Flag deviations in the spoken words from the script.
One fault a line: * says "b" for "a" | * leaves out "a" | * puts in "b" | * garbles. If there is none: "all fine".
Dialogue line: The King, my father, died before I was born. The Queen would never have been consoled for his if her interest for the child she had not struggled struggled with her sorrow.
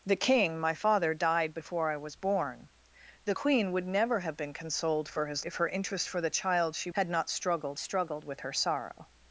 all fine